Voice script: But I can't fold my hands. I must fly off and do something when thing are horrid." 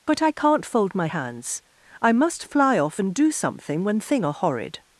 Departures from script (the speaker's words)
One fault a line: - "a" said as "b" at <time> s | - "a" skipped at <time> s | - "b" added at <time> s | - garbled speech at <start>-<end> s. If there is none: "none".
none